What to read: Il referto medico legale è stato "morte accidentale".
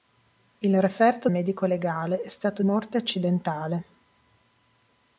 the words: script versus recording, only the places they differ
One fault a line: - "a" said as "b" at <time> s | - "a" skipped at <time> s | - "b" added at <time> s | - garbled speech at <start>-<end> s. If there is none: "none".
none